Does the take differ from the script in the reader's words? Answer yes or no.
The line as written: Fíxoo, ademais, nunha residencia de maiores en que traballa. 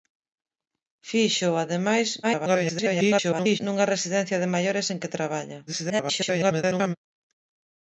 yes